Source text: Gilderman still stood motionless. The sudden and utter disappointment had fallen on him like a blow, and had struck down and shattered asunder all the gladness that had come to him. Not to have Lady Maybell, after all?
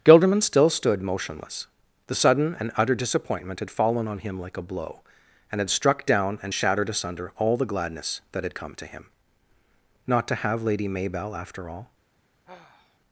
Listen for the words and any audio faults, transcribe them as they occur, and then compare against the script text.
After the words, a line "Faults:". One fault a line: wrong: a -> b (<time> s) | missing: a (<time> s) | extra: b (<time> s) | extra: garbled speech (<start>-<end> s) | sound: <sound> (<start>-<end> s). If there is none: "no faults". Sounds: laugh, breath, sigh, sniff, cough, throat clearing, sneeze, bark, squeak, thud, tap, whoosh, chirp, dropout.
Gilderman still stood motionless. The sudden and utter disappointment had fallen on him like a blow, and had struck down and shattered asunder all the gladness that had come to him. Not to have Lady Maybell, after all?
Faults:
sound: sigh (12.5-13.0 s)